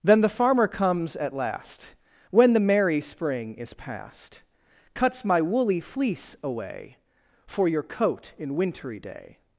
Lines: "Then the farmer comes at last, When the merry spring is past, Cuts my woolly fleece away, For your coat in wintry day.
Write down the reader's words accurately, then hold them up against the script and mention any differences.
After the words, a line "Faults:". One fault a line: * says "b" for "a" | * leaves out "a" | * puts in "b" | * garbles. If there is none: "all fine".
"Then the farmer comes at last, When the merry spring is past, Cuts my woolly fleece away, For your coat in wintry day.
Faults:
all fine